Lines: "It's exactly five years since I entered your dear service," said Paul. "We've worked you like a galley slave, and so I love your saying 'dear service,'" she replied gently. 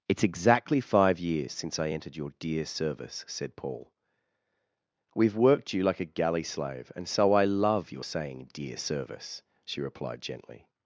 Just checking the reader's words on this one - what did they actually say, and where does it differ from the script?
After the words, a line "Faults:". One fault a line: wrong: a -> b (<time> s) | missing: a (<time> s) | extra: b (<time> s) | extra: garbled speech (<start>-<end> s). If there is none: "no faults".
"It's exactly five years since I entered your dear service," said Paul. "We've worked you like a galley slave, and so I love your saying 'dear service,'" she replied gently.
Faults:
no faults